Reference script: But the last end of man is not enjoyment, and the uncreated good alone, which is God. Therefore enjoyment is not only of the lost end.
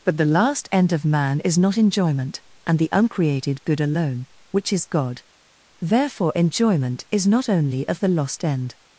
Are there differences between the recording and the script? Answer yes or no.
no